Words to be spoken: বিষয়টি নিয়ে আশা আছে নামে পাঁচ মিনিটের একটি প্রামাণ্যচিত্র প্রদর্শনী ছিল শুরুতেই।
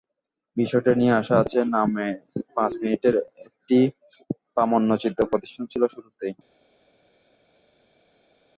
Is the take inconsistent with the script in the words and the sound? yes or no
no